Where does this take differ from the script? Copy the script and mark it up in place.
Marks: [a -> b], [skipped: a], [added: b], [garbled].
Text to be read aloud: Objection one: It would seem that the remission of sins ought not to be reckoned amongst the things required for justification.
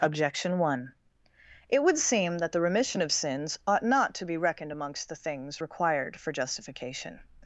Objection one: It would seem that the remission of sins ought not to be reckoned amongst the things required for justification.